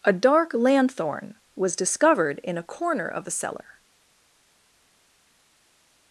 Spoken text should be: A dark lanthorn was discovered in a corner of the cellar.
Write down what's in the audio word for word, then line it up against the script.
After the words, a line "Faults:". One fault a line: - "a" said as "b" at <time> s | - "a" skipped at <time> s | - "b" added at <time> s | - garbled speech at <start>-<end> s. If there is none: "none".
A dark lanthorn was discovered in a corner of the cellar.
Faults:
none